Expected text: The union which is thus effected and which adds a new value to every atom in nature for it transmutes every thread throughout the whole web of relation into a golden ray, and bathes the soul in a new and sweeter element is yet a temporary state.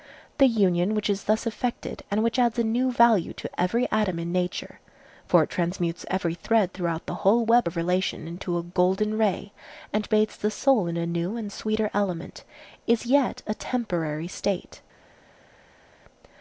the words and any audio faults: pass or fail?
pass